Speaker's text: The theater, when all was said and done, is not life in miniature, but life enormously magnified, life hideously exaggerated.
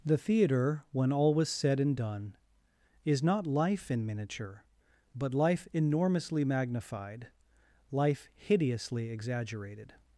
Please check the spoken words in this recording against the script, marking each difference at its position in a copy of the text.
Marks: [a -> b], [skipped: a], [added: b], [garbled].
The theater, when all was said and done, is not life in miniature, but life enormously magnified, life hideously exaggerated.